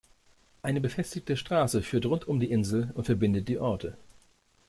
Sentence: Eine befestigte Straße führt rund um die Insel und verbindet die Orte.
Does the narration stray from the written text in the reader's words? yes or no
no